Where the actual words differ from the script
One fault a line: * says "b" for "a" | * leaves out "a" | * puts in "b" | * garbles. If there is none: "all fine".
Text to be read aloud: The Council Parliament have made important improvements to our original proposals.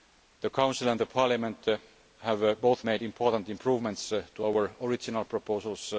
* puts in "and"
* puts in "both"